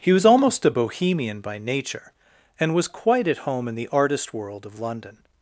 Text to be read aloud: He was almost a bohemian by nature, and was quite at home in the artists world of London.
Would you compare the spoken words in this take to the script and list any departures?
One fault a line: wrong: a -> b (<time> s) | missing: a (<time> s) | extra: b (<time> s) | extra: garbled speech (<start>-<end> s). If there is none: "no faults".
wrong: artists -> artist (3.9 s)